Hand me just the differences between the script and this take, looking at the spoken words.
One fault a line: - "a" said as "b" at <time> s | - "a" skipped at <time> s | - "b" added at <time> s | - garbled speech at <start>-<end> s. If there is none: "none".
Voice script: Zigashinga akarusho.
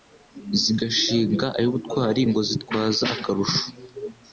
- "ay'ubutwari Ngo zitwaza" added at 1.6 s